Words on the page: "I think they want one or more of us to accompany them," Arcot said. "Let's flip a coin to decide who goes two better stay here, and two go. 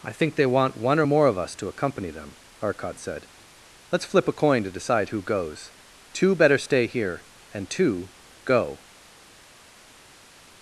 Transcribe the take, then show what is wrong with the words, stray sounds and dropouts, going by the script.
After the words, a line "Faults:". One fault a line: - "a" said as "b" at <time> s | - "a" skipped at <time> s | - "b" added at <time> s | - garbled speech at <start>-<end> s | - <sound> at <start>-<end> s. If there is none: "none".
"I think they want one or more of us to accompany them," Arcot said. "Let's flip a coin to decide who goes two better stay here, and two go.
Faults:
none